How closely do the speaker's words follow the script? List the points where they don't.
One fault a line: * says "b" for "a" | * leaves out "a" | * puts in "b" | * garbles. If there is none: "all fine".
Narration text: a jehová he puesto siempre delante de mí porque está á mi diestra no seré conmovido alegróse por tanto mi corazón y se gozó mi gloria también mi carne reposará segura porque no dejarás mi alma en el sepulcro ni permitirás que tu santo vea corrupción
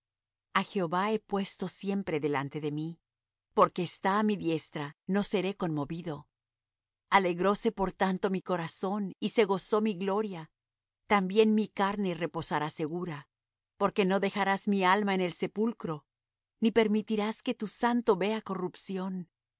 all fine